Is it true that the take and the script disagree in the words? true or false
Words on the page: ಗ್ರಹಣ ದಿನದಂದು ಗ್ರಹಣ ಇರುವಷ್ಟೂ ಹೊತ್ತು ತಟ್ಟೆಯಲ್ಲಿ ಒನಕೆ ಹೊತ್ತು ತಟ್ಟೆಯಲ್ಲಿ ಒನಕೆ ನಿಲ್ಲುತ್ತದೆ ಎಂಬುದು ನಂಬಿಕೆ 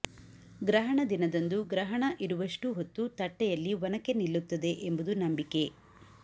true